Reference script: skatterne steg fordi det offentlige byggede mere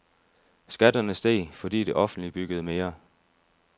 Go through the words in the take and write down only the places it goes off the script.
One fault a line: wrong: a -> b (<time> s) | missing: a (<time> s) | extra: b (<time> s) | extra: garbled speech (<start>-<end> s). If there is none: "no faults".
no faults